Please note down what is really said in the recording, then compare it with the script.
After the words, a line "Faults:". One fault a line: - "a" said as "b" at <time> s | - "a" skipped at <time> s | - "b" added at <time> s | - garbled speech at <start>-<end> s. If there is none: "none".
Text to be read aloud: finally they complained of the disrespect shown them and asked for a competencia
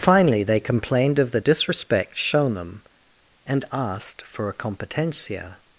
finally they complained of the disrespect shown them and asked for a competencia
Faults:
none